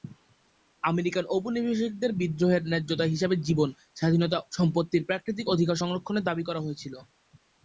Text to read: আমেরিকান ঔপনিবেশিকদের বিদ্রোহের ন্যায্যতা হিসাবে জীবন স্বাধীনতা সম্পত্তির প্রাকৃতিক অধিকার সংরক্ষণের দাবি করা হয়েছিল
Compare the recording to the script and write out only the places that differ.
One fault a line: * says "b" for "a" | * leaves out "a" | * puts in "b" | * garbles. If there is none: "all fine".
all fine